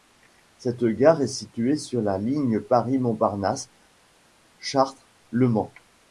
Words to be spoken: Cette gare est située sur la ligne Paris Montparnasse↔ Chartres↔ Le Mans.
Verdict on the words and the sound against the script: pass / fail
pass